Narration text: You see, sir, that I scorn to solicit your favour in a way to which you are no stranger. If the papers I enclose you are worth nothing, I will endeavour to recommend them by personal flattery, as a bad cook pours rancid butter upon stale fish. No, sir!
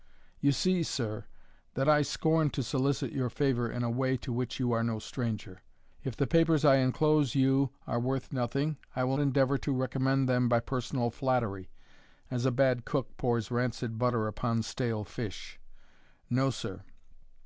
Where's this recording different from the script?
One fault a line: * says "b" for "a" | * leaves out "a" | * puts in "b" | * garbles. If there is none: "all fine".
all fine